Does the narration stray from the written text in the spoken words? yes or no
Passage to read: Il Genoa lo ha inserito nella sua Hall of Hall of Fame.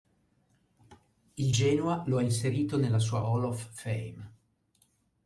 yes